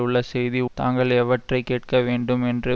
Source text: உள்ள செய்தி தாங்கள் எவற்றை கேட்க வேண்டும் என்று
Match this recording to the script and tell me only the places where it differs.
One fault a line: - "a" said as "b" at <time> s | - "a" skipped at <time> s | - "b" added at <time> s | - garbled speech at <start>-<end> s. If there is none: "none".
none